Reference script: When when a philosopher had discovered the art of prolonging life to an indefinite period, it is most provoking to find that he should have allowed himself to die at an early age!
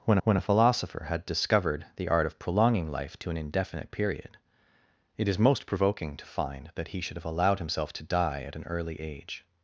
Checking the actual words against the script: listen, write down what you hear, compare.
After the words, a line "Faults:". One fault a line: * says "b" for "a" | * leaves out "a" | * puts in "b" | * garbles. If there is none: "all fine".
When when a philosopher had discovered the art of prolonging life to an indefinite period, it is most provoking to find that he should have allowed himself to die at an early age!
Faults:
all fine